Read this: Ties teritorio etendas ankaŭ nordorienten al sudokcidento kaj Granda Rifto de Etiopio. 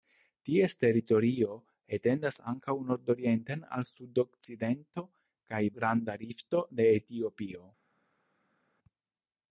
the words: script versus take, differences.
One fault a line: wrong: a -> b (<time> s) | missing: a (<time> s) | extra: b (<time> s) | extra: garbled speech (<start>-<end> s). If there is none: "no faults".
no faults